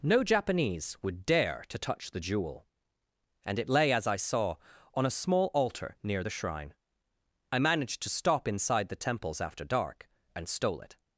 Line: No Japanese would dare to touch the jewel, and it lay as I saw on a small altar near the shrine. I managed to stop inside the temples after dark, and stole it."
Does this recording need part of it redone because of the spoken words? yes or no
no